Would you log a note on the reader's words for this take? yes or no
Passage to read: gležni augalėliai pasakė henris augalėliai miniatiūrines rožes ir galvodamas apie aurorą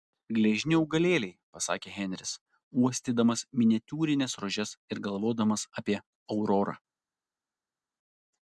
yes